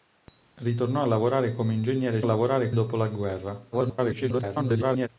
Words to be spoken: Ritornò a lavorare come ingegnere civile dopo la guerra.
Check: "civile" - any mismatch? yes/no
yes